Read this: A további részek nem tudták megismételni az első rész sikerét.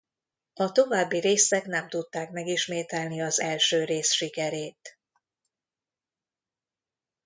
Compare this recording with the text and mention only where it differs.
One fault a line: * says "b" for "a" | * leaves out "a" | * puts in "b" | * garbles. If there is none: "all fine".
all fine